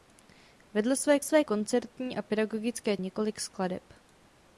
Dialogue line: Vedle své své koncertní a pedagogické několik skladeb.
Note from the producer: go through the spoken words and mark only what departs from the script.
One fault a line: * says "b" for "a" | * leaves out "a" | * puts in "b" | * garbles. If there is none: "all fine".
all fine